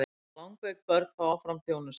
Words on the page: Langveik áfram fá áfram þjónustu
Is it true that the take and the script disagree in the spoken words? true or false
true